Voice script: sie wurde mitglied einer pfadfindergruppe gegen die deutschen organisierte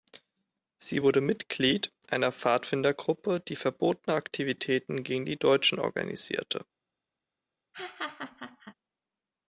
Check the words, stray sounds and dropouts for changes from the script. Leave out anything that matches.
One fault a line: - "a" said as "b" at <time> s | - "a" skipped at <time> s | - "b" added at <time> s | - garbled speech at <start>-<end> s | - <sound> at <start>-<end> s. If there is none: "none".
- "die verbotene aktivitäten" added at 3.4 s
- laugh at 7.7-8.7 s